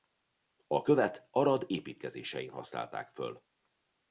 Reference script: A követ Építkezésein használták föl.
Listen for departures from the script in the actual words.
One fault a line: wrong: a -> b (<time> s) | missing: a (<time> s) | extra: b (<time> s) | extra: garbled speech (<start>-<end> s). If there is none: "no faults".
extra: Arad (1.3 s)